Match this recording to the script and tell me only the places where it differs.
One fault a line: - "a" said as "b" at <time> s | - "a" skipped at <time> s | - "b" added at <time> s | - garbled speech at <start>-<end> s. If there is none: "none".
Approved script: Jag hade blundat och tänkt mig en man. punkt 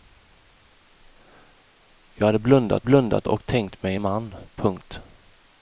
- "blundat" added at 2.8 s